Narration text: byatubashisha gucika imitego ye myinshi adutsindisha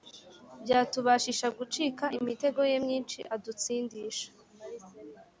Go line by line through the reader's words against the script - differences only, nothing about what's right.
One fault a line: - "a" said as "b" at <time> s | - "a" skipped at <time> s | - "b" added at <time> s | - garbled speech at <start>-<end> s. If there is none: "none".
none